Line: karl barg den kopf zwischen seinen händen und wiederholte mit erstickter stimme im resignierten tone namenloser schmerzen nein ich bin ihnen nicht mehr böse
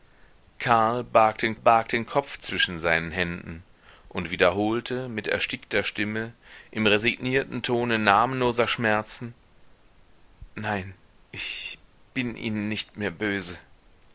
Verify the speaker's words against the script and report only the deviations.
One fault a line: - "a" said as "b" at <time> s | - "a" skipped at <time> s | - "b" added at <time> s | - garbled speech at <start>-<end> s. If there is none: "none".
- "barg den" added at 1.5 s